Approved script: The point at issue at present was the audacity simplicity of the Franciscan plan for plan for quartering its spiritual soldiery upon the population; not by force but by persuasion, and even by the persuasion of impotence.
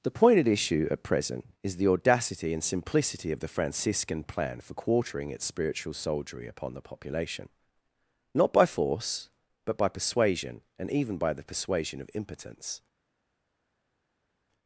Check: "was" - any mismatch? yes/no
yes